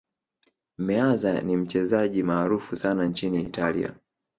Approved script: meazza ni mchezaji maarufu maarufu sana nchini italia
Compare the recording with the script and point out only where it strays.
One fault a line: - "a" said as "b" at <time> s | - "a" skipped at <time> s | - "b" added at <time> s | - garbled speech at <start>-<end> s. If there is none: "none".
- "maarufu" skipped at 2.8 s